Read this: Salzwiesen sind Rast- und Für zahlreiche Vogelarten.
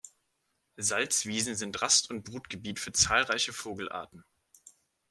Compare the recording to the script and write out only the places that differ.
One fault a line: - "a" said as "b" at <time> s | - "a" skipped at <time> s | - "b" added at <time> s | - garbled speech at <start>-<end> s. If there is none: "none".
- "Brutgebiet" added at 2.2 s